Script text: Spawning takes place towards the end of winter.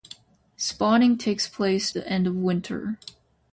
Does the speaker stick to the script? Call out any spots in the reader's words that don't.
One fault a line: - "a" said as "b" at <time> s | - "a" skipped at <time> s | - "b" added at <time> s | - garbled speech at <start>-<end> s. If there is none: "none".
- "towards" skipped at 1.9 s